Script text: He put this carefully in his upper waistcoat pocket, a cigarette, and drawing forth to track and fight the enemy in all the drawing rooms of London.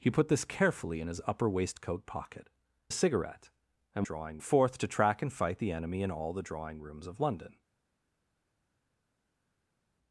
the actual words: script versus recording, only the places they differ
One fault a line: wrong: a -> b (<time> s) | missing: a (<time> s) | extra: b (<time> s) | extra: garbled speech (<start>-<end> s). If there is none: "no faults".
no faults